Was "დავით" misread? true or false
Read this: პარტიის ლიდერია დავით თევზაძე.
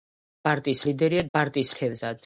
true